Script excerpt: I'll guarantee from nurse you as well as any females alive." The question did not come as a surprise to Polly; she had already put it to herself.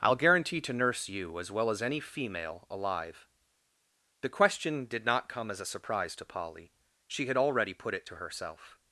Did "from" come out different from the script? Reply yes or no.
yes